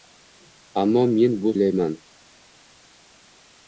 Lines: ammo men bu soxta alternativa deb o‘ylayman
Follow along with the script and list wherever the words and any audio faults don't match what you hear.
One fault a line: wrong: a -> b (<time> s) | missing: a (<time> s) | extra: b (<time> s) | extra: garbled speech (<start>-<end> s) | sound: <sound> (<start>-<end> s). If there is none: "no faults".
missing: soxta alternativa deb (1.5 s)